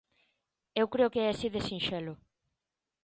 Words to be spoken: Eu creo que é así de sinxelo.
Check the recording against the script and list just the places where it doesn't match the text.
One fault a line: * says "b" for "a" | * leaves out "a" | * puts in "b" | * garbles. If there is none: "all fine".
all fine